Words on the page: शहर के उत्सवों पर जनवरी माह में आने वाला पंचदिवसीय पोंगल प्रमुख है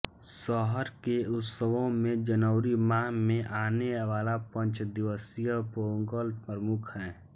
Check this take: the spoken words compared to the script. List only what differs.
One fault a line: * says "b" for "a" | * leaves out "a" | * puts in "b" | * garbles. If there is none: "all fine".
* says "में" for "पर"